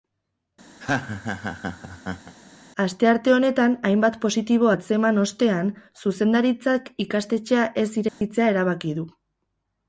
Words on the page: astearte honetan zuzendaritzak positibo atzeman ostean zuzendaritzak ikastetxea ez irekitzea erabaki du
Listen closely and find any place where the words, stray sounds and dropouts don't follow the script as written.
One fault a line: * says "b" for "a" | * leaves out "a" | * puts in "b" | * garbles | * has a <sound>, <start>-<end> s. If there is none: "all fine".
* has a laugh, 0.8-2.3 s
* says "hainbat" for "zuzendaritzak"
* has a dropout, 8.1-8.2 s